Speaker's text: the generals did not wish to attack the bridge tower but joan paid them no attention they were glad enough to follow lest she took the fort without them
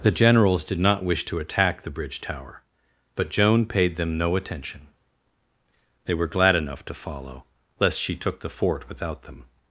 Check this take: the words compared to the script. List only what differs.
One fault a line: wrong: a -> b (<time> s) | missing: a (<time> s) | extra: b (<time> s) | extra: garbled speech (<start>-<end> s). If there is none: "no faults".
no faults